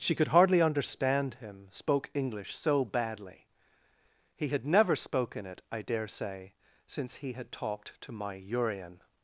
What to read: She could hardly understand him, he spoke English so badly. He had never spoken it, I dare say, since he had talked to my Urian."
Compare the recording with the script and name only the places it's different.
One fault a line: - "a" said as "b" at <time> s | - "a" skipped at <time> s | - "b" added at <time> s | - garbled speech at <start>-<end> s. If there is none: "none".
- "he" skipped at 1.7 s